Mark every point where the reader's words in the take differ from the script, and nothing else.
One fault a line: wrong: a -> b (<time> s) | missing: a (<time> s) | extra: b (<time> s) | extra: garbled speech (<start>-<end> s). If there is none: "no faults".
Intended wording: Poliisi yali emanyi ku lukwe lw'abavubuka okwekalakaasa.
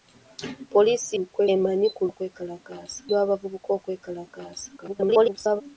wrong: yali -> lukwe (1.2 s)
wrong: lukwe -> okwekalakaasa (2.1 s)
extra: garbled speech (4.8-5.6 s)